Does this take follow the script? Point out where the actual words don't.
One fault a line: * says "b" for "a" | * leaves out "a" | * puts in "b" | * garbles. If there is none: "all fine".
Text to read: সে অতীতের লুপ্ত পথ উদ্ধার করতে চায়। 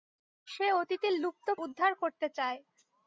* leaves out "পথ"